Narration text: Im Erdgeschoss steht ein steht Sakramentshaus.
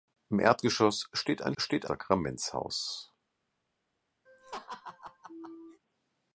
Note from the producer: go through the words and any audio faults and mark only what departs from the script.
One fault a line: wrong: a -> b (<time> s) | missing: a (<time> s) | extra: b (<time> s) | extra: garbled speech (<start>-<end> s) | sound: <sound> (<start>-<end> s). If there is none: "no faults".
sound: laugh (4.3-5.8 s)